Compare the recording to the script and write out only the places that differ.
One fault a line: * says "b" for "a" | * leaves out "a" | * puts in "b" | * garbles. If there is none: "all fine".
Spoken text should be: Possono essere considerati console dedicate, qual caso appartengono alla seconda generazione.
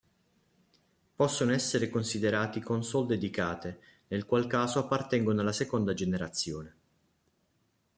* puts in "nel"